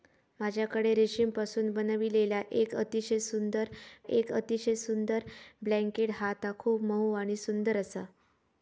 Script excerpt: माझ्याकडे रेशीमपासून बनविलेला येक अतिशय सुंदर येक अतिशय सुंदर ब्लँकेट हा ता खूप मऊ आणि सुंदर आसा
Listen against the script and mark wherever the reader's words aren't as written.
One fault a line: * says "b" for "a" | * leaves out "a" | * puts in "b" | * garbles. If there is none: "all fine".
all fine